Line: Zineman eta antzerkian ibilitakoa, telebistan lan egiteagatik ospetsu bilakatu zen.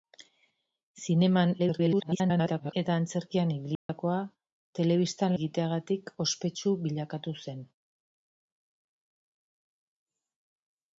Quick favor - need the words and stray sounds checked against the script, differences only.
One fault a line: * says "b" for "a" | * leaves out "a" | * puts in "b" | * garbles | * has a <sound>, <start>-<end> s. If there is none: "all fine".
* garbles
* has a dropout, 3.8-3.9 s
* leaves out "lan"